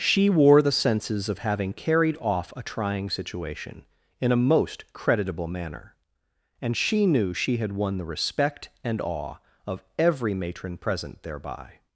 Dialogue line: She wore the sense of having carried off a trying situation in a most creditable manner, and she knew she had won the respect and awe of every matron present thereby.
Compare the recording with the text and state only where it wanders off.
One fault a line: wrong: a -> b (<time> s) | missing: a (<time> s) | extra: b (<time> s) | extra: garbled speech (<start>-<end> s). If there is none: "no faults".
wrong: sense -> senses (0.7 s)